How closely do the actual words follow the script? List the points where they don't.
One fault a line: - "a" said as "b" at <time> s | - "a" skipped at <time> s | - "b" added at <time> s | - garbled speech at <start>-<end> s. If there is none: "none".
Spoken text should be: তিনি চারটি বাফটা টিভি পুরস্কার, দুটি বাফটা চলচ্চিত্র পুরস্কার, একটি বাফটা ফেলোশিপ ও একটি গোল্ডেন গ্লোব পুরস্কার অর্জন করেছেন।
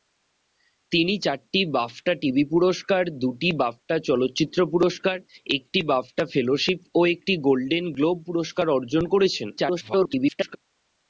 - garbled speech at 9.6-10.6 s